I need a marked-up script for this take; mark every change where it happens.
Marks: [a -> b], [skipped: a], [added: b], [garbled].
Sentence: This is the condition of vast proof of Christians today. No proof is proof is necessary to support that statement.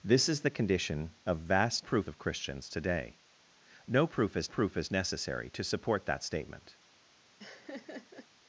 This is the condition of vast proof of Christians today. No proof is proof is necessary to support that statement.